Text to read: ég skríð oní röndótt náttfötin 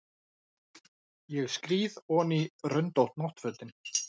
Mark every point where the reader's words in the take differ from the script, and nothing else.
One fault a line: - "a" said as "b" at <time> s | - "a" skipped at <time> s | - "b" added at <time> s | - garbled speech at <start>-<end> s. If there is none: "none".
none